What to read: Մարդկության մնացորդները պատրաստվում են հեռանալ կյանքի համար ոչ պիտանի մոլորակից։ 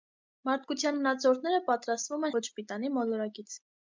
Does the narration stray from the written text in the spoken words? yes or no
yes